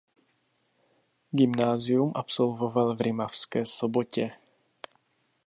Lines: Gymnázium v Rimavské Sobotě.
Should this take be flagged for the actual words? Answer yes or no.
yes